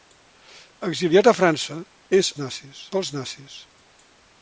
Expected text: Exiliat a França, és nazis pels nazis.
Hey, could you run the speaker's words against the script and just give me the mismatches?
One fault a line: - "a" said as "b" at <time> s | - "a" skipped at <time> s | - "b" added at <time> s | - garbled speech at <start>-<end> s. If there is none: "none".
none